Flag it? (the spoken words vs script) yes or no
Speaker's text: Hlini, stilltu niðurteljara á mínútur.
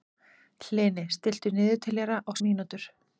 no